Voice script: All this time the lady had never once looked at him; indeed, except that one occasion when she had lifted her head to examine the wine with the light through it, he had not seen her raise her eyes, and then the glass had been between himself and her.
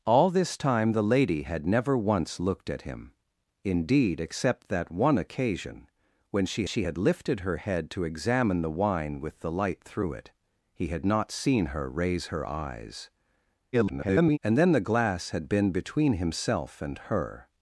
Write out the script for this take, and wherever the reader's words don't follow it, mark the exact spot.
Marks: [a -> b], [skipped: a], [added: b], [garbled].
All this time the lady had never once looked at him; indeed, except that one occasion when she [added: she] had lifted her head to examine the wine with the light through it, he had not seen her raise her eyes, [garbled] and then the glass had been between himself and her.